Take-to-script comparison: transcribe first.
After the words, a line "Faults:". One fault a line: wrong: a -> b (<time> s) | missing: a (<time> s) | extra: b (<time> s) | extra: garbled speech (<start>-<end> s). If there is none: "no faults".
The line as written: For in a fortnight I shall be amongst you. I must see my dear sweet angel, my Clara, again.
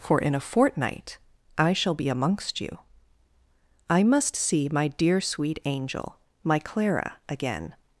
For in a fortnight I shall be amongst you. I must see my dear sweet angel, my Clara, again.
Faults:
no faults